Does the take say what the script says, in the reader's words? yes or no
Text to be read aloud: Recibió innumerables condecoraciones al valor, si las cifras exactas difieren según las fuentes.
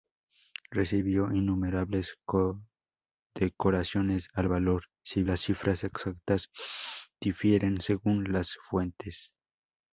yes